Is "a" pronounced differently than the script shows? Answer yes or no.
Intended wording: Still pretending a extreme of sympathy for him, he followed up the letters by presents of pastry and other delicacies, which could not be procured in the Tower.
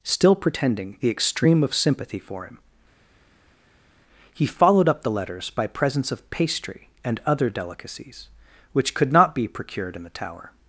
yes